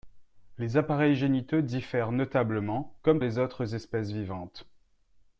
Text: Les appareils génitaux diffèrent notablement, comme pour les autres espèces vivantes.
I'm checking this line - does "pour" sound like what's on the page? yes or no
no